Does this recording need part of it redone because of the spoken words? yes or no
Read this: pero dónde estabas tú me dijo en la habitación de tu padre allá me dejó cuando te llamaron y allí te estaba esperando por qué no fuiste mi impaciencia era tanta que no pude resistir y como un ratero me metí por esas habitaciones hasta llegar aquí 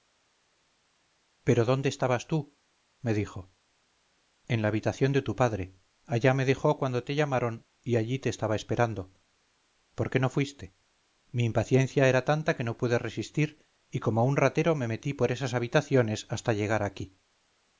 no